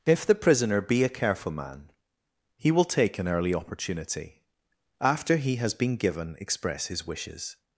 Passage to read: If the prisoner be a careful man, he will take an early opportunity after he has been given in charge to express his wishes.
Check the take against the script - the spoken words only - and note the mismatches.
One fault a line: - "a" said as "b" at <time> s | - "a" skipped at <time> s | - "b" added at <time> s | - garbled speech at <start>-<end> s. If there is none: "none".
- "in charge to" skipped at 6.4 s